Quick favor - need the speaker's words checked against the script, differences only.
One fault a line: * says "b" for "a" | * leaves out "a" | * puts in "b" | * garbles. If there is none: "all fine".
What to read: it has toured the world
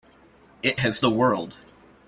* leaves out "toured"